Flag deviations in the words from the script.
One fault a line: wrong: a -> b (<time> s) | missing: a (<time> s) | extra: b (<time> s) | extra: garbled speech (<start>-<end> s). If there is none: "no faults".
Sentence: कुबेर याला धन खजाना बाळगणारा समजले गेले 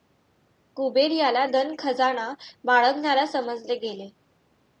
no faults